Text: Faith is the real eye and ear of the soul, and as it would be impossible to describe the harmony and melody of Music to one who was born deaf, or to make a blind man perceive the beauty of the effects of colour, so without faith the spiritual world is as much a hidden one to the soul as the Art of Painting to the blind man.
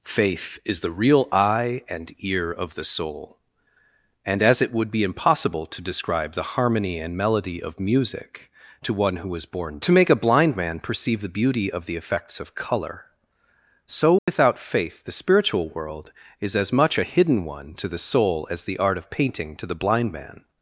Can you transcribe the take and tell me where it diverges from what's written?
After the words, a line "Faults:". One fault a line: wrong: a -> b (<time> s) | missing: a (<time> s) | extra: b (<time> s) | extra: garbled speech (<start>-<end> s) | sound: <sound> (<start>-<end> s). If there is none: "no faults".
Faith is the real eye and ear of the soul, and as it would be impossible to describe the harmony and melody of Music to one who was born to make a blind man perceive the beauty of the effects of colour, so without faith the spiritual world is as much a hidden one to the soul as the Art of Painting to the blind man.
Faults:
missing: deaf or (9.8 s)
sound: dropout (14.2-14.3 s)